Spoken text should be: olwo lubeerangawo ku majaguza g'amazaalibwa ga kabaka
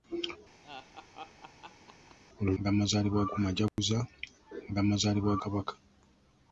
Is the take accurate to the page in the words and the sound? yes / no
no